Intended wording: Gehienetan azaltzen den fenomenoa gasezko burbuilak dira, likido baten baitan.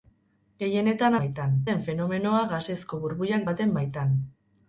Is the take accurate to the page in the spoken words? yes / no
no